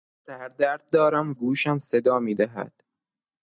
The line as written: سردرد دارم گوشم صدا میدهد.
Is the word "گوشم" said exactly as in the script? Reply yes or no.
yes